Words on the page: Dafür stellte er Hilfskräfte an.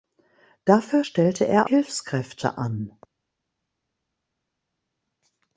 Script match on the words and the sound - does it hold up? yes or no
yes